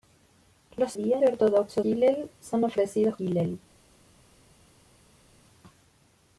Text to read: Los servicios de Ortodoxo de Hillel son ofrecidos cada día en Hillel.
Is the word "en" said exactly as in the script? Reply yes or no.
no